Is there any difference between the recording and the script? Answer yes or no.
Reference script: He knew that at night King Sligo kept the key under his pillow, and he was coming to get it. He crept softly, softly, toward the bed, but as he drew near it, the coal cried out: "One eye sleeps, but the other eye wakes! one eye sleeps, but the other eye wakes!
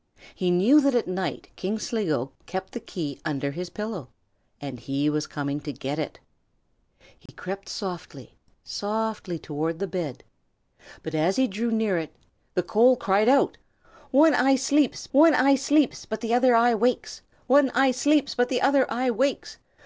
yes